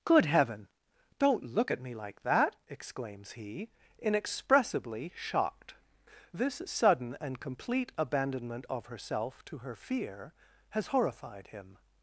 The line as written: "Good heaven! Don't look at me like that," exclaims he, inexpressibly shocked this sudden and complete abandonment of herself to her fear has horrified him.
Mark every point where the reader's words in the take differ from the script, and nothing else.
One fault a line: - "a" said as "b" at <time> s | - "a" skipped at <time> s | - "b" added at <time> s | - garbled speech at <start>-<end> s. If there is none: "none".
none